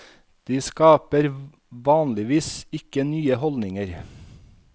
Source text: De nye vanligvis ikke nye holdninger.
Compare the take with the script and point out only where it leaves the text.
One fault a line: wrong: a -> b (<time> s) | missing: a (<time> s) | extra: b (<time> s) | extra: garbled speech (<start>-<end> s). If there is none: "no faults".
wrong: nye -> skaper (0.6 s)